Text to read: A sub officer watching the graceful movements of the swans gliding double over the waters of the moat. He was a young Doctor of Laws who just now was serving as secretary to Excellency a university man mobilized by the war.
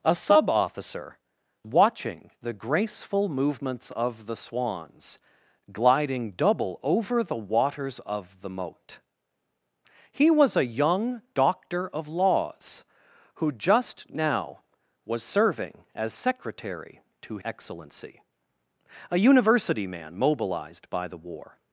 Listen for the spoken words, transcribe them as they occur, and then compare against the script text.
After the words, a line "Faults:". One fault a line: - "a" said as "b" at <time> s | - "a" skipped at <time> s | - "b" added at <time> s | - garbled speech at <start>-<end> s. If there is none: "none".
A sub officer watching the graceful movements of the swans gliding double over the waters of the moat. He was a young Doctor of Laws who just now was serving as secretary to Excellency a university man mobilized by the war.
Faults:
none